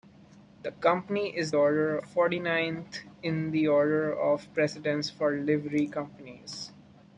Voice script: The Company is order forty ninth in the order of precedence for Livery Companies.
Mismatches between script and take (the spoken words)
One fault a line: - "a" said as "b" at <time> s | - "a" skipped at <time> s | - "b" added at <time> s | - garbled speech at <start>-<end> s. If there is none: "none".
none